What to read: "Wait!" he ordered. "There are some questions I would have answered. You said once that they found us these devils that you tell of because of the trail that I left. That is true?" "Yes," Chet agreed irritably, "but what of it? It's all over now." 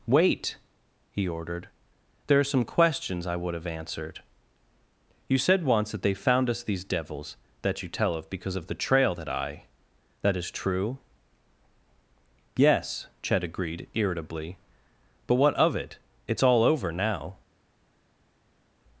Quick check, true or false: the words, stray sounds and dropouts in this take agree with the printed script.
false